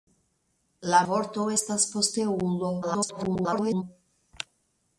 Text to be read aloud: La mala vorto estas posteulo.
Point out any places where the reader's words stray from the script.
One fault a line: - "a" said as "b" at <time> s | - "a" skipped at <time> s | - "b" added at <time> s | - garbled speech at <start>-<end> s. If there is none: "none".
- "mala" skipped at 1.0 s
- garbled speech at 2.8-3.8 s